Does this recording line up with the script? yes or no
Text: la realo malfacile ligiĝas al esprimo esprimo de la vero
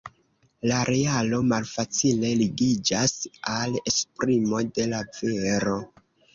no